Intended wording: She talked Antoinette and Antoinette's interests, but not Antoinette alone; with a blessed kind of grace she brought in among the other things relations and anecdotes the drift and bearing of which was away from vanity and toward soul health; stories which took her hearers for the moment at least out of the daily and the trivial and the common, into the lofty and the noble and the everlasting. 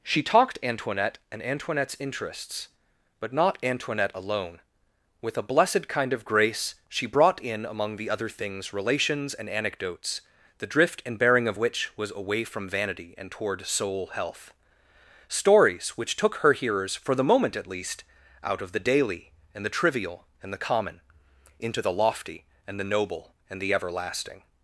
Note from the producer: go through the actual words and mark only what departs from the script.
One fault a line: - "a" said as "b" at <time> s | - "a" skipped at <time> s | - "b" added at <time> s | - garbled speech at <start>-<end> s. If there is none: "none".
none